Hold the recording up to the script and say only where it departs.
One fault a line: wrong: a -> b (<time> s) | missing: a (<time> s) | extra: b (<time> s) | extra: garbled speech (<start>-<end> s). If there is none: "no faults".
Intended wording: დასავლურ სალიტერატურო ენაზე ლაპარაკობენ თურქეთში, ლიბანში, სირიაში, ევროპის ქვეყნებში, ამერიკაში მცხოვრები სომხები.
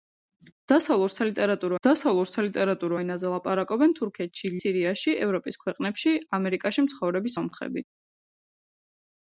extra: დასავლურ სალიტერატურო (1.9 s)
missing: ლიბანში (4.5 s)